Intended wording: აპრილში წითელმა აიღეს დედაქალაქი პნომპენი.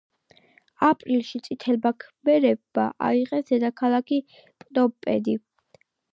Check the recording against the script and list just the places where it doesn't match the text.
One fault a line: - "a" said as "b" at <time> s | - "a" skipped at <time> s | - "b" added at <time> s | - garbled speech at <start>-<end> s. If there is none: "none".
- "ქმერებმა" added at 2.0 s